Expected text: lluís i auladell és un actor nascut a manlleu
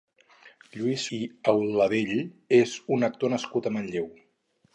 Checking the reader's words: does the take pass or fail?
pass